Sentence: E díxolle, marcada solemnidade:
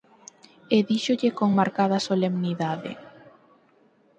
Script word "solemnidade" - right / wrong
right